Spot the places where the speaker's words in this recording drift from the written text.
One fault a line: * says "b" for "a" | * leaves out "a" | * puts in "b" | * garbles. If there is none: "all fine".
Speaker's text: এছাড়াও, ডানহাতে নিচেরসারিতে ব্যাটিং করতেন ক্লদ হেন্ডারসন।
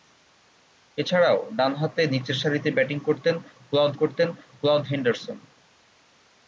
* puts in "করতেন ক্লদ"